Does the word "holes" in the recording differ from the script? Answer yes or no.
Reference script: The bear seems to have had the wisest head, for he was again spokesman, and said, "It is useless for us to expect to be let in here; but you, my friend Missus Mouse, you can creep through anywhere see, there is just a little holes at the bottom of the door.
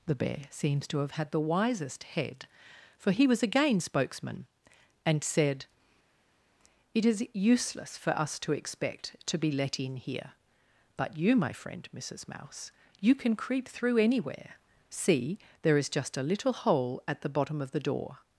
yes